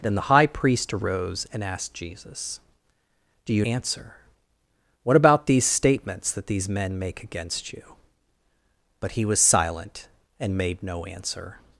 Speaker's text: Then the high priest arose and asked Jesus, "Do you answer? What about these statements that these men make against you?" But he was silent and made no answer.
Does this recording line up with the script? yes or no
yes